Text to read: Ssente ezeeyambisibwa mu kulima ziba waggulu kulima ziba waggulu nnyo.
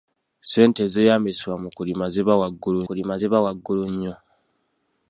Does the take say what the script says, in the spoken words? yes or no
yes